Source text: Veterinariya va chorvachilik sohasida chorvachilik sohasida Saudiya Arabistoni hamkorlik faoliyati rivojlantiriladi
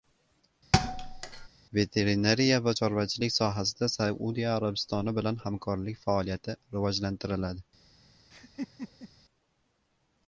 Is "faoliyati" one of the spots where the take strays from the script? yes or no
no